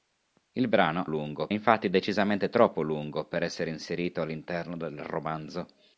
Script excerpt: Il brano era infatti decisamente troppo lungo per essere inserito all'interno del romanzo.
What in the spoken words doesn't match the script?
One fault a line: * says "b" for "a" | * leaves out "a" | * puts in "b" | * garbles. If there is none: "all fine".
* says "lungo" for "era"